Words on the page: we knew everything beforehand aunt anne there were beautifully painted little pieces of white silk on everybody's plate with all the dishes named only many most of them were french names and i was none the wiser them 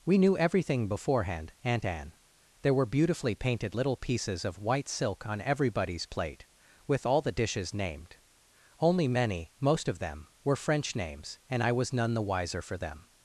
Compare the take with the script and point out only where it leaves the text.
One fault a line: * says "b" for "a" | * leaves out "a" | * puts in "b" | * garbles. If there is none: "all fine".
* puts in "for"